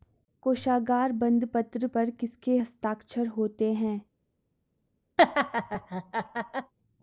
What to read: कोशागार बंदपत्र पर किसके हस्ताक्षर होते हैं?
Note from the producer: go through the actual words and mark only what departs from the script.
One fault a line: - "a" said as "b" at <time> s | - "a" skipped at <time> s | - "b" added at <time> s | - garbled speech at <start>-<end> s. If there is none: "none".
none